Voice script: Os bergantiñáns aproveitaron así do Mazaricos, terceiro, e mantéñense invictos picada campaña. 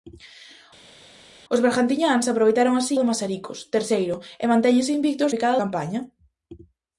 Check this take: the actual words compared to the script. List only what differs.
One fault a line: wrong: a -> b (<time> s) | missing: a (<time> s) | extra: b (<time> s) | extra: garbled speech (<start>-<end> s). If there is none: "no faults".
no faults